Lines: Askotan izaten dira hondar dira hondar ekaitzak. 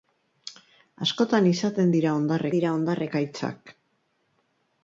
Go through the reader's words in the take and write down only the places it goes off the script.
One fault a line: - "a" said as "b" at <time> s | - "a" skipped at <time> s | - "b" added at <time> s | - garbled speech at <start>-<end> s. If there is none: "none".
none